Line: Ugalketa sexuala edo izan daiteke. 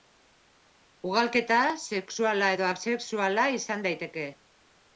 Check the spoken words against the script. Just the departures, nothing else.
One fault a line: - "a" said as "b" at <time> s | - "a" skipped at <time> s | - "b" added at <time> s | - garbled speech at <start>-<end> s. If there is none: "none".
- "asexuala" added at 2.7 s